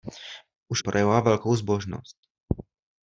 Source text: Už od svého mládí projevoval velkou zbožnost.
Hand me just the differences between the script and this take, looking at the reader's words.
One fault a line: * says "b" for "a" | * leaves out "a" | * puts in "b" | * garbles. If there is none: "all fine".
* leaves out "od svého mládí"